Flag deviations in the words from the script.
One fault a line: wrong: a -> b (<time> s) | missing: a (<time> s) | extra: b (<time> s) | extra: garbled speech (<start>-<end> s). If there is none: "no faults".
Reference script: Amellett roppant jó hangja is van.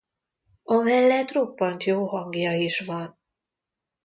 no faults